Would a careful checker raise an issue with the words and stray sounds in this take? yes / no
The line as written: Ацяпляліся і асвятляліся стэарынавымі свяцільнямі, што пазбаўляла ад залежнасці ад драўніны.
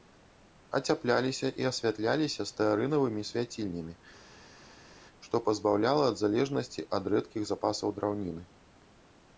yes